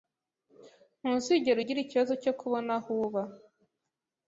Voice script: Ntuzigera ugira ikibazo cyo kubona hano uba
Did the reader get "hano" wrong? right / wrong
wrong